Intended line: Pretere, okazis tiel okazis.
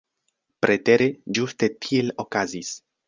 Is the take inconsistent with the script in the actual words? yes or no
yes